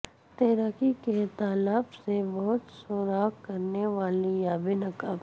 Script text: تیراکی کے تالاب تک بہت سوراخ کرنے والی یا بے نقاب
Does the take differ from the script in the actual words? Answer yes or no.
yes